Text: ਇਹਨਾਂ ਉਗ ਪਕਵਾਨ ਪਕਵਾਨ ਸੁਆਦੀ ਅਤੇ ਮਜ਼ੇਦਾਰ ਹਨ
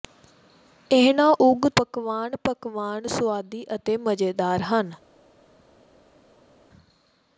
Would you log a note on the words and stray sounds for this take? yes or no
no